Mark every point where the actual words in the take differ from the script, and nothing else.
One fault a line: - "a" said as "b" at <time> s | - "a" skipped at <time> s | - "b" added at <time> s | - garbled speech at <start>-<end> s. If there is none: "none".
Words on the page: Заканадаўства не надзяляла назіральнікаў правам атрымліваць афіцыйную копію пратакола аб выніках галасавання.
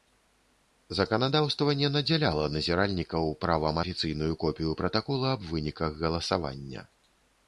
- "атрымліваць" skipped at 3.8 s